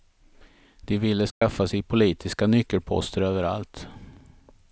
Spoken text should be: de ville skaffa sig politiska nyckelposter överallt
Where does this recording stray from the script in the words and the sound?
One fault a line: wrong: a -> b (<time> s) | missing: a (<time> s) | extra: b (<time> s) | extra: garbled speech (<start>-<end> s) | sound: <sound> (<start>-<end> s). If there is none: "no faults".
sound: dropout (1.3-1.4 s)